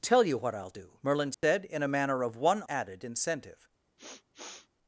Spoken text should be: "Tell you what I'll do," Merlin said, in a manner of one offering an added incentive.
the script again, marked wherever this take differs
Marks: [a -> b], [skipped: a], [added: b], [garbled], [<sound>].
"Tell you what I'll do," Merlin said, [dropout] in a manner of one [skipped: offering an] added incentive. [sniff]